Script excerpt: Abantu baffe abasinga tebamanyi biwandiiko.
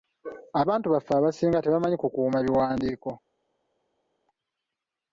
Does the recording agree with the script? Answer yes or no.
no